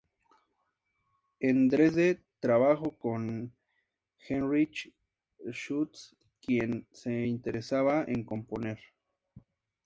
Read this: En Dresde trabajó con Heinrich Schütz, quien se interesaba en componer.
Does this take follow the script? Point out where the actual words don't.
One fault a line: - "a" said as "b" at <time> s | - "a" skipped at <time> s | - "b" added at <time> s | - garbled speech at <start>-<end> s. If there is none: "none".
none